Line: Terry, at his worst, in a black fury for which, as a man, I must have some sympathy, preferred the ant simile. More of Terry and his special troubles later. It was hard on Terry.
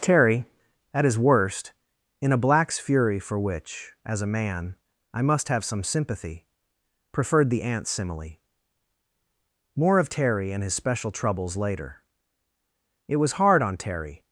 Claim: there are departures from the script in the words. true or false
true